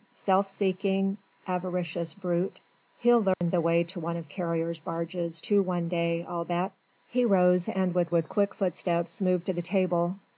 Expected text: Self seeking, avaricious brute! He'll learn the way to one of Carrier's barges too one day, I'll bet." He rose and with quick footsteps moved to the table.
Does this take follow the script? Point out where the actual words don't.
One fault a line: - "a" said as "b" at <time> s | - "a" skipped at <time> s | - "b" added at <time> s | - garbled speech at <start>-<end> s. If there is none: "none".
- "with" added at 8.1 s